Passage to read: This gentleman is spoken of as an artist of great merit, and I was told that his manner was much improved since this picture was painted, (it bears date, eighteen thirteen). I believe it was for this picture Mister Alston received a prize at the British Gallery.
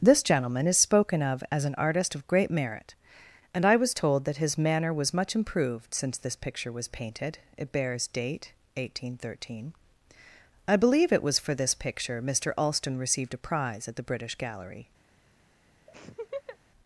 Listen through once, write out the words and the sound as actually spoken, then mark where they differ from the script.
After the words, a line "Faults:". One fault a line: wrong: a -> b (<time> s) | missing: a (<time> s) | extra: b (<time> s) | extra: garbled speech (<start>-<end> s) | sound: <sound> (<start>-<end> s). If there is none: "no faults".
This gentleman is spoken of as an artist of great merit, and I was told that his manner was much improved since this picture was painted, (it bears date, eighteen thirteen). I believe it was for this picture Mister Alston received a prize at the British Gallery.
Faults:
sound: laugh (15.9-16.6 s)